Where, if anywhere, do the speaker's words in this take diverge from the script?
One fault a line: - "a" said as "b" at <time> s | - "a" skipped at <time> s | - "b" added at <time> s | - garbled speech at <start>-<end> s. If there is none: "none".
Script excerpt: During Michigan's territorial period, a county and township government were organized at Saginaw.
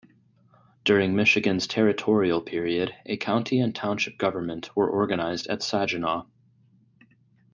none